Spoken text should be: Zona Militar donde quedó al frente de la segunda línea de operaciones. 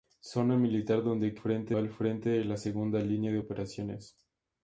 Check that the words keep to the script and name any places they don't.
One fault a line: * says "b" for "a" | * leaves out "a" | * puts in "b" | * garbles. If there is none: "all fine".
* says "frente" for "quedó"